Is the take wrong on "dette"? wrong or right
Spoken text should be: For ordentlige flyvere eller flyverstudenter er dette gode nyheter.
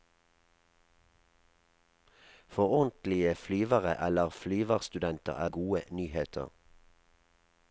wrong